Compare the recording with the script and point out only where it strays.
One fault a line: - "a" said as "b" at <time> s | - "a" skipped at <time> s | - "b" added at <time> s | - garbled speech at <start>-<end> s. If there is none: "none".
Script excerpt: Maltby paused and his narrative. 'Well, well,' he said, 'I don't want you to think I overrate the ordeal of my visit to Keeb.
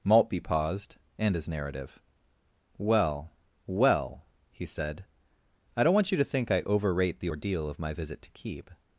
none